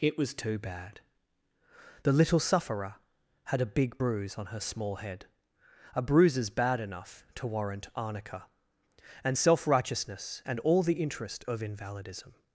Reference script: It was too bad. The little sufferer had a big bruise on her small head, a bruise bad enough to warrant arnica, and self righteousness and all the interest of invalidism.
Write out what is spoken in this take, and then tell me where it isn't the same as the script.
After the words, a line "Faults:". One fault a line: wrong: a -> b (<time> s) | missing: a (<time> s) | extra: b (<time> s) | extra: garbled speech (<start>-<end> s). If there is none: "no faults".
It was too bad. The little sufferer had a big bruise on her small head, a bruises bad enough to warrant arnica, and self righteousness and all the interest of invalidism.
Faults:
wrong: bruise -> bruises (6.0 s)